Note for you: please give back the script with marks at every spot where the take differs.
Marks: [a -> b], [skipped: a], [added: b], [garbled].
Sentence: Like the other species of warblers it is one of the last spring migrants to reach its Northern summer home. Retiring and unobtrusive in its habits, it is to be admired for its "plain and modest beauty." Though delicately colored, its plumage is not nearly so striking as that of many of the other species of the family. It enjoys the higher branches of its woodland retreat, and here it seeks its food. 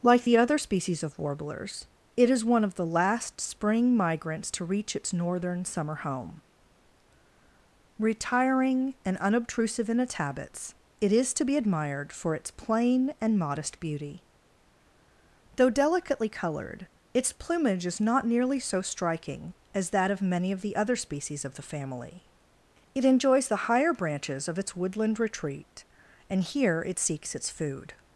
Like the other species of warblers it is one of the last spring migrants to reach its Northern summer home. Retiring and unobtrusive in its habits, it is to be admired for its "plain and modest beauty." Though delicately colored, its plumage is not nearly so striking as that of many of the other species of the family. It enjoys the higher branches of its woodland retreat, and here it seeks its food.